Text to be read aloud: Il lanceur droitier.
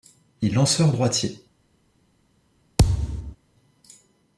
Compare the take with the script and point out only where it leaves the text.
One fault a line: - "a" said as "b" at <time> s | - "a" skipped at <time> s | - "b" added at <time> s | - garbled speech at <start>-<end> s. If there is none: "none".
none